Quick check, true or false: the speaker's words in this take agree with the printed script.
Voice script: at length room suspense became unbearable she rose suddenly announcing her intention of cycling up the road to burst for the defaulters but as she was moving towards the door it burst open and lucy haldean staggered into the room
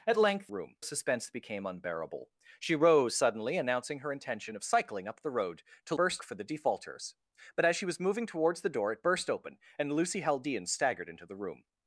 true